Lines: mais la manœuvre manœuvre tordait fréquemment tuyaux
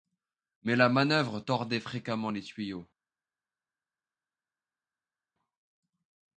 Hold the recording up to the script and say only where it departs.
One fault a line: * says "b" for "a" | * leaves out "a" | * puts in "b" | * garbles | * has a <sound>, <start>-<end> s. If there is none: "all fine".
* leaves out "manœuvre"
* puts in "les"